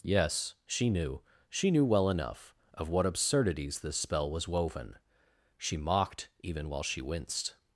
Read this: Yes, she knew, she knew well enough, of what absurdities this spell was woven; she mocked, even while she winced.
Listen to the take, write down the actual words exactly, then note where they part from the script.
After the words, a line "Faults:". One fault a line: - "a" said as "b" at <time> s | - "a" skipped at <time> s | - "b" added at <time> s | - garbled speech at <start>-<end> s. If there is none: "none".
Yes, she knew, she knew well enough, of what absurdities this spell was woven; she mocked, even while she winced.
Faults:
none